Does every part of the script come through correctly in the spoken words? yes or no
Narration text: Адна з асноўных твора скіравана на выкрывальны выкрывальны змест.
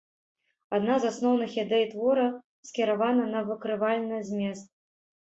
no